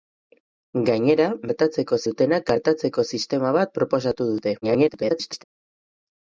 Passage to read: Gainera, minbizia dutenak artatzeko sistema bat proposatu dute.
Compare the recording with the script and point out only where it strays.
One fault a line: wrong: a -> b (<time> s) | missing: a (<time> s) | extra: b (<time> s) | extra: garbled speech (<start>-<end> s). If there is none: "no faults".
wrong: minbizia -> artatzeko (1.5 s)
extra: garbled speech (4.6-5.4 s)